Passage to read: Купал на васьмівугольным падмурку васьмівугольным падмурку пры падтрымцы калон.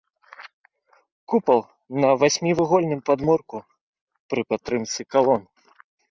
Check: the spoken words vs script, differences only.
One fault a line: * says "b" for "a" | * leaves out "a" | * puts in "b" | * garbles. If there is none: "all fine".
* leaves out "васьмівугольным падмурку"